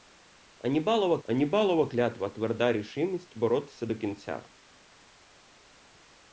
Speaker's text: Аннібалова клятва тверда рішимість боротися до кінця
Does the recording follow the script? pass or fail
fail